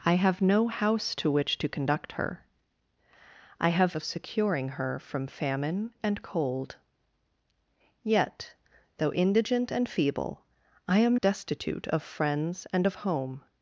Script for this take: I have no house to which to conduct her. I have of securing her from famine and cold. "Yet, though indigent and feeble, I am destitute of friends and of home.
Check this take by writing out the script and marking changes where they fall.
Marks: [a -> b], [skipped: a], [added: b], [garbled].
I have no house to which to conduct her. I have of securing her from famine and cold. "Yet, though indigent and feeble, I am destitute of friends and of home.